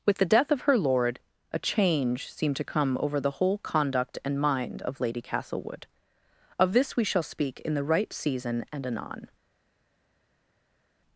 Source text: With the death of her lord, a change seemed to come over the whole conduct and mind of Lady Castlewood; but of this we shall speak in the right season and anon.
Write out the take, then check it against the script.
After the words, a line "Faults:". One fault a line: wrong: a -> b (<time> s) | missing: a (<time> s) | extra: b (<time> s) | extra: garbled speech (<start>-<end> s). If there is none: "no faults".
With the death of her lord, a change seemed to come over the whole conduct and mind of Lady Castlewood; of this we shall speak in the right season and anon.
Faults:
missing: but (5.8 s)